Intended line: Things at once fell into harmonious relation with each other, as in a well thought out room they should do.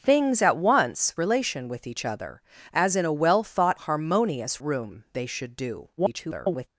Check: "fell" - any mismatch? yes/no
yes